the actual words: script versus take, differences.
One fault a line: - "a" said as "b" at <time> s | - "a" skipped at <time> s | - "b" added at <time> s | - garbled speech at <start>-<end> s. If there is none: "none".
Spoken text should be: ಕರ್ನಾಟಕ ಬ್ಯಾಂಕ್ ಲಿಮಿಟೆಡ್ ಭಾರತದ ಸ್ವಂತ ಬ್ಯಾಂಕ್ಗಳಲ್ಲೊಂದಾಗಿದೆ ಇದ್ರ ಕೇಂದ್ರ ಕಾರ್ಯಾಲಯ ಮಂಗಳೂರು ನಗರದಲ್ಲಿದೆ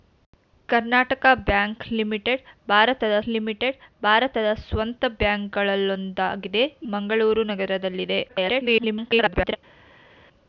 - "ಲಿಮಿಟೆಡ್ ಭಾರತದ" added at 3.3 s
- "ಇದ್ರ ಕೇಂದ್ರ ಕಾರ್ಯಾಲಯ" skipped at 6.6 s
- garbled speech at 8.3-9.6 s